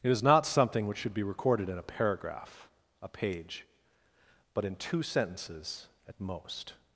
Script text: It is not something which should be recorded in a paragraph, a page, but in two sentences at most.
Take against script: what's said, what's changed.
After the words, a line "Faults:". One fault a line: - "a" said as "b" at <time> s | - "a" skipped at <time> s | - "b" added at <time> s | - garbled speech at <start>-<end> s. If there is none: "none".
It is not something which should be recorded in a paragraph, a page, but in two sentences at most.
Faults:
none